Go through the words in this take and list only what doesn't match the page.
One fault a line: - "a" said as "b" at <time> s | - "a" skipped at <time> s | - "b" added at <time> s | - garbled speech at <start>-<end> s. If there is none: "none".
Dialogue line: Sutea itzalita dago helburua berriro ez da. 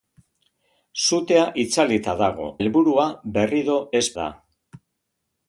none